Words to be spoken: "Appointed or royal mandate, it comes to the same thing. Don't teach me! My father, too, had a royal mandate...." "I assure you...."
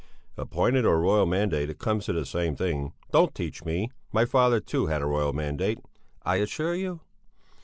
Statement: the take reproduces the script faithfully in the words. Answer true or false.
true